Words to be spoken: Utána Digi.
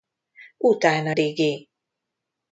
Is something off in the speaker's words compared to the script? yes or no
no